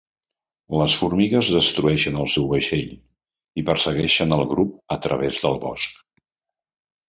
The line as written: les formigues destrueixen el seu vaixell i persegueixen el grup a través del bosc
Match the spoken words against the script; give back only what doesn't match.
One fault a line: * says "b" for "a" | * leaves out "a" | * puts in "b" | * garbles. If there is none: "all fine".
all fine